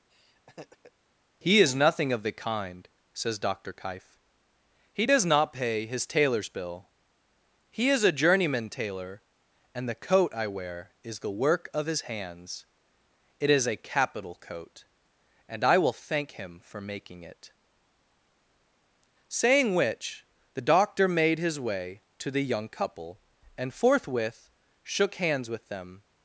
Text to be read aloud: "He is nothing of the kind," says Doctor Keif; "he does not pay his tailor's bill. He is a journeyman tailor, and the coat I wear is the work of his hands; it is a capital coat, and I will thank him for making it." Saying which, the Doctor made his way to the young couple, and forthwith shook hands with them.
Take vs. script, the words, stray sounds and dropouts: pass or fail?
fail